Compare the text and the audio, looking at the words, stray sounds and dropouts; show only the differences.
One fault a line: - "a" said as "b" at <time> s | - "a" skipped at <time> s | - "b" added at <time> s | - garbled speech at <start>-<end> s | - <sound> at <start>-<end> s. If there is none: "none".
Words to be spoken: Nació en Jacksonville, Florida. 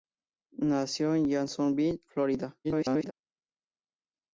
- garbled speech at 2.6-3.1 s